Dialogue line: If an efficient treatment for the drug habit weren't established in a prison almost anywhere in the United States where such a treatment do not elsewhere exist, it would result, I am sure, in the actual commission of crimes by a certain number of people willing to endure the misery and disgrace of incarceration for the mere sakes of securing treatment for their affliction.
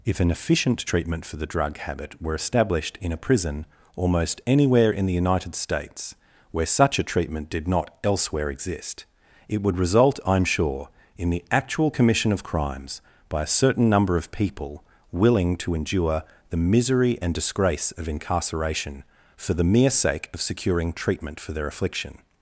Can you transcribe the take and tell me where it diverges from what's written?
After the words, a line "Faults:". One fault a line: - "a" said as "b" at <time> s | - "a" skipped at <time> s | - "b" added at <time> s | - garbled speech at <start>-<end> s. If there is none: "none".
If an efficient treatment for the drug habit were established in a prison almost anywhere in the United States where such a treatment did not elsewhere exist, it would result, I am sure, in the actual commission of crimes by a certain number of people willing to endure the misery and disgrace of incarceration for the mere sake of securing treatment for their affliction.
Faults:
- "weren't" said as "were" at 2.2 s
- "do" said as "did" at 7.5 s
- "sakes" said as "sake" at 19.9 s